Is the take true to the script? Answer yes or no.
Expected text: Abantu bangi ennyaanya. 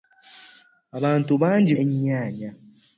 yes